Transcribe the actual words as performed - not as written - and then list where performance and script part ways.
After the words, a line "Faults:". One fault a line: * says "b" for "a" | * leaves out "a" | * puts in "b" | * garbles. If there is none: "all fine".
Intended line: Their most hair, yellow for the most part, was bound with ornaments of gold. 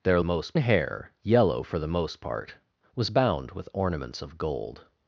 Their most hair, yellow for the most part, was bound with ornaments of gold.
Faults:
all fine